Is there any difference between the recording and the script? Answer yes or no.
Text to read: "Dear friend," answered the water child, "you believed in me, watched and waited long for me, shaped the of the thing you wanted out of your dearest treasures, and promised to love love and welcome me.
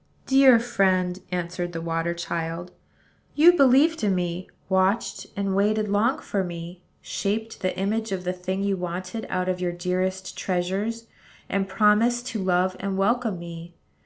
yes